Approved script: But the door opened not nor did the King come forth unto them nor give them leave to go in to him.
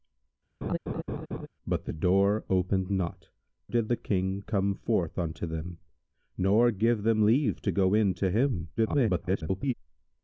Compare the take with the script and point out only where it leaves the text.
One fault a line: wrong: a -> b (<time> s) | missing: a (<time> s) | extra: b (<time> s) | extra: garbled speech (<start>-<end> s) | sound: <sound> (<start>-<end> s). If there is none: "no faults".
sound: laugh (0.6-1.5 s)
missing: nor (3.3 s)
extra: garbled speech (8.8-9.7 s)